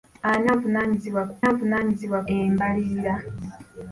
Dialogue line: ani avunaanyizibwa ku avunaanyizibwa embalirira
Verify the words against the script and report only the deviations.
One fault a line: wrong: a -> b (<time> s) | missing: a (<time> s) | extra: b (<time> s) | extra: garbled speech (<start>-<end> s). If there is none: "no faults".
no faults